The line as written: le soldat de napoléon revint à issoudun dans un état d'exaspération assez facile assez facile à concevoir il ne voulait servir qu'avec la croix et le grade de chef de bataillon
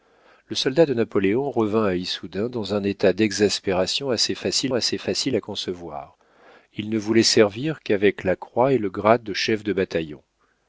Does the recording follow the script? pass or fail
pass